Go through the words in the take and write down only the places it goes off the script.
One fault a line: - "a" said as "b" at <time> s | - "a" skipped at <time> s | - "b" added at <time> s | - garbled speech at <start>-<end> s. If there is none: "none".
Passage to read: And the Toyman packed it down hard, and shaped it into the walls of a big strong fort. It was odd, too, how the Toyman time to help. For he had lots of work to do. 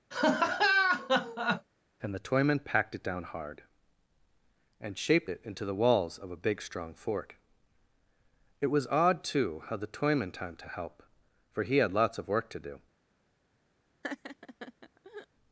none